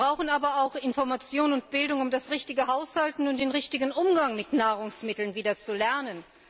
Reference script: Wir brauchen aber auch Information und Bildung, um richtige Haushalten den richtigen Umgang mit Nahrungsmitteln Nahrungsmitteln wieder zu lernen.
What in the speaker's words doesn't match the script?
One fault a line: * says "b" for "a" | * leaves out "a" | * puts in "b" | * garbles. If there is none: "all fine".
* puts in "das"
* puts in "und"
* leaves out "Nahrungsmitteln"